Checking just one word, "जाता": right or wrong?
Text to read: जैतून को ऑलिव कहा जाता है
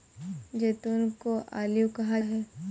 wrong